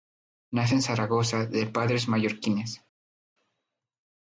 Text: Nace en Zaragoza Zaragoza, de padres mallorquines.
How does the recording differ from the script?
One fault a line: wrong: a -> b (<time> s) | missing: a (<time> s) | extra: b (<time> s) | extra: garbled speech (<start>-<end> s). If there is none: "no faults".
missing: Zaragoza (1.4 s)